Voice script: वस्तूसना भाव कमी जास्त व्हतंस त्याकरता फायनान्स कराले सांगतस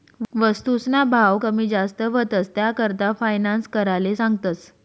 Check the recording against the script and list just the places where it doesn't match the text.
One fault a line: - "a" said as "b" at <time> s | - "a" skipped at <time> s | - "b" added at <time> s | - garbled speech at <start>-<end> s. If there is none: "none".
none